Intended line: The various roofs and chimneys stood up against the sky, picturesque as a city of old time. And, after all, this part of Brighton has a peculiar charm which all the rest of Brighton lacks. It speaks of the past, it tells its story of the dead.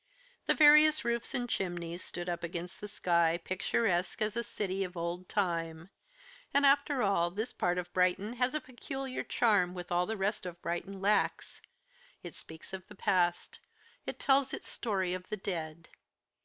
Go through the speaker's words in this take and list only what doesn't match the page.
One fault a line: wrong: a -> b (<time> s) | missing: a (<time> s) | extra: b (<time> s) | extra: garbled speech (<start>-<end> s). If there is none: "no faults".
no faults